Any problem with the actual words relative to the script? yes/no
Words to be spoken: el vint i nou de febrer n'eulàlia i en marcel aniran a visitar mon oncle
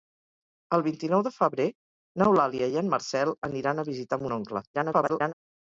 yes